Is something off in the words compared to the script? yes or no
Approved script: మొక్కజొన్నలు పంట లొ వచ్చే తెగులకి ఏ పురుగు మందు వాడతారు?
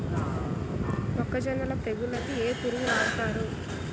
yes